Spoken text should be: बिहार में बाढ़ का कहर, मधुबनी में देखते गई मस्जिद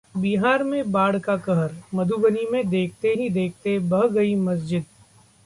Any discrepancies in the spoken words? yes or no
yes